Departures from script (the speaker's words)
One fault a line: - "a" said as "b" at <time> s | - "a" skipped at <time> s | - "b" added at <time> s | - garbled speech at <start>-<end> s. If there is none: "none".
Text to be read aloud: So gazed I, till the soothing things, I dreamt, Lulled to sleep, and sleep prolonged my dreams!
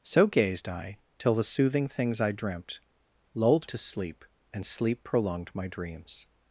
none